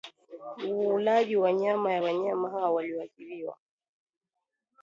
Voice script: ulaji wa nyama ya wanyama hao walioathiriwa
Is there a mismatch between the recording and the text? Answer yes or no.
no